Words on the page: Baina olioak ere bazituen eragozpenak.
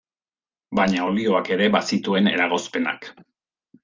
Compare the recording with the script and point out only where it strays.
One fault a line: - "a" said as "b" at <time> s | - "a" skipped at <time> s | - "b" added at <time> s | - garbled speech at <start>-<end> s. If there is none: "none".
none